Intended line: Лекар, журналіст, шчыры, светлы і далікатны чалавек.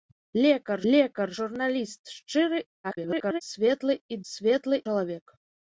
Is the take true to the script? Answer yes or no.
no